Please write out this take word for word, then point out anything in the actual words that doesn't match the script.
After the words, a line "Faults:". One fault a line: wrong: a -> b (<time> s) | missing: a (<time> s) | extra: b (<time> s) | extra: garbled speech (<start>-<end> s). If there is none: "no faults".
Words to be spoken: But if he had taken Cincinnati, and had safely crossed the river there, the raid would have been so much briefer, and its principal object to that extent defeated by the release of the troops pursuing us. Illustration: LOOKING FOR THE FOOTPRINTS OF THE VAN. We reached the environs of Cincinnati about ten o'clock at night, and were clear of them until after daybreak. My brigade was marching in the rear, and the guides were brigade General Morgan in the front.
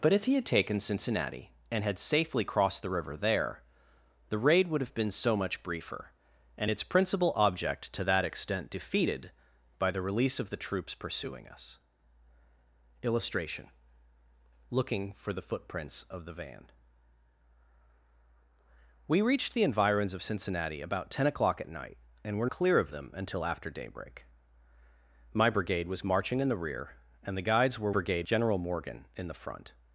But if he had taken Cincinnati, and had safely crossed the river there, the raid would have been so much briefer, and its principal object to that extent defeated by the release of the troops pursuing us. Illustration: LOOKING FOR THE FOOTPRINTS OF THE VAN. We reached the environs of Cincinnati about ten o'clock at night, and were clear of them until after daybreak. My brigade was marching in the rear, and the guides were brigade General Morgan in the front.
Faults:
no faults